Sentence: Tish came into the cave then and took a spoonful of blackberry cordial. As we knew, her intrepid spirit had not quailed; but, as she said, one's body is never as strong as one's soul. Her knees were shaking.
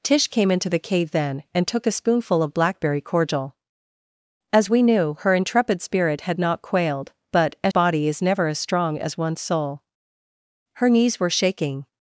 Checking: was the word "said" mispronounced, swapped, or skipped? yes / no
yes